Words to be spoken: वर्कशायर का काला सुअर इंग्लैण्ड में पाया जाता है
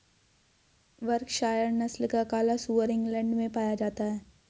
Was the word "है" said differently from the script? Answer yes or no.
no